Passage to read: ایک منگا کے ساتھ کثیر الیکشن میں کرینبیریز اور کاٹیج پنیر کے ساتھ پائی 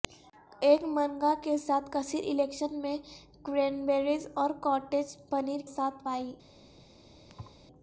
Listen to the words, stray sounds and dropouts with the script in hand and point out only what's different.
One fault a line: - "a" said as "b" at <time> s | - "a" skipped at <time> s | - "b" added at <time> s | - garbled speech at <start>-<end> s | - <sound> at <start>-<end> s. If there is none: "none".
- "کے" skipped at 5.6 s
- thud at 7.3-7.6 s